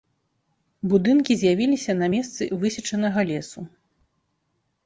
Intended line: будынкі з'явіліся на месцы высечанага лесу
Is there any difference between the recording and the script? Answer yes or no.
no